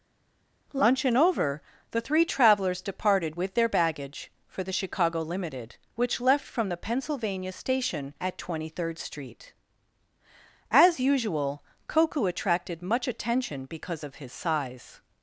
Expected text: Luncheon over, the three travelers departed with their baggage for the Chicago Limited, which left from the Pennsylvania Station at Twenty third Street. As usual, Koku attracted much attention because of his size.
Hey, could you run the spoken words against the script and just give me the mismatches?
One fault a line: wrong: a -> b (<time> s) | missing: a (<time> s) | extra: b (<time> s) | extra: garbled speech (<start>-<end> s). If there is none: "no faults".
no faults